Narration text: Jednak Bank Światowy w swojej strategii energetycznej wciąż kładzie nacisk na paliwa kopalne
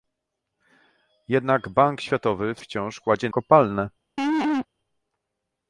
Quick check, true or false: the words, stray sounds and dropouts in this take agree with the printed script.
false